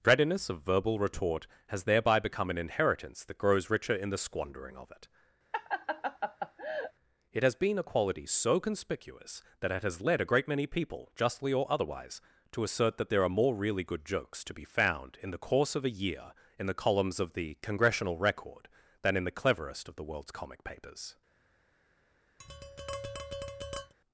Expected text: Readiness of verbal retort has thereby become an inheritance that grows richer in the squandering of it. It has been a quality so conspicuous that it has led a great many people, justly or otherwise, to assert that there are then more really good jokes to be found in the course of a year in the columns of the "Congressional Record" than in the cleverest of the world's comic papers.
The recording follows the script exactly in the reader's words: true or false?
false